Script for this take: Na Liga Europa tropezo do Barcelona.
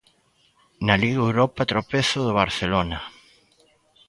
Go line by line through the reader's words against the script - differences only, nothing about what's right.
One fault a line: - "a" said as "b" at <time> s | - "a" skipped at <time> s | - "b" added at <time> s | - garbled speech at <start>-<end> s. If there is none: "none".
none